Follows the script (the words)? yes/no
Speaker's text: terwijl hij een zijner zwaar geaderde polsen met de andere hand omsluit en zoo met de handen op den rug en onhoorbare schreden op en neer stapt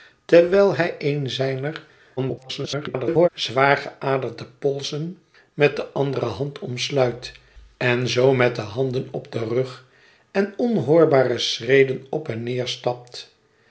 no